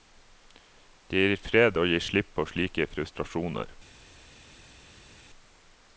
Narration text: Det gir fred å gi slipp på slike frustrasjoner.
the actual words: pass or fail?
pass